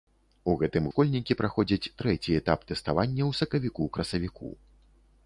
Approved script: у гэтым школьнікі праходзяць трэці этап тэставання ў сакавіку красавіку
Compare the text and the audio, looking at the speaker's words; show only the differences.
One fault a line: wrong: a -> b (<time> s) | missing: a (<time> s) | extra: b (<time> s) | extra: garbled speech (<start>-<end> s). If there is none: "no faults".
no faults